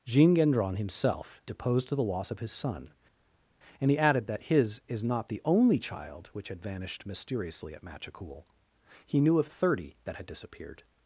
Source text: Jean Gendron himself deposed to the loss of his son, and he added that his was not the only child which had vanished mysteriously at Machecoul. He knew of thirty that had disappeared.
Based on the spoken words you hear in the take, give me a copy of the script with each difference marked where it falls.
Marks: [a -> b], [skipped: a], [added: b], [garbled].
Jean Gendron himself deposed to the loss of his son, and he added that his [was -> is] not the only child which had vanished mysteriously at Machecoul. He knew of thirty that had disappeared.